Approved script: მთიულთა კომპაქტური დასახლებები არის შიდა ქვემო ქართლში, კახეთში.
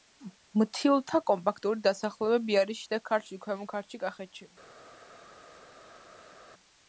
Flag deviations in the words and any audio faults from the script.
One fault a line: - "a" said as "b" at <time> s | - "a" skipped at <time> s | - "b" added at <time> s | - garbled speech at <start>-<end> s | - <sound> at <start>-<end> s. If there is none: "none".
- "ქართლში" added at 3.1 s